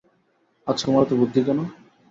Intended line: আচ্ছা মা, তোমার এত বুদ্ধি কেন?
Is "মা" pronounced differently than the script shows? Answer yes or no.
yes